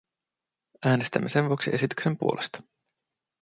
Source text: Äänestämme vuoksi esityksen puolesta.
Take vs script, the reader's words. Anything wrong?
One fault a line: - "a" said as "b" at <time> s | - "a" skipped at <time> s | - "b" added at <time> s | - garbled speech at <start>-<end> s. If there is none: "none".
- "sen" added at 1.3 s